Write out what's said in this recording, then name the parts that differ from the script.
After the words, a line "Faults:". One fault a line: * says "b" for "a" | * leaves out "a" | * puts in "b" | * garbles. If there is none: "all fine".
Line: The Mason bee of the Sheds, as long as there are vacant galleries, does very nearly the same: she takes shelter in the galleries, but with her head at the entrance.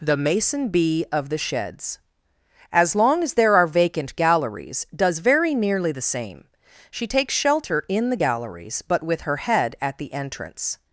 The Mason bee of the Sheds, as long as there are vacant galleries, does very nearly the same: she takes shelter in the galleries, but with her head at the entrance.
Faults:
all fine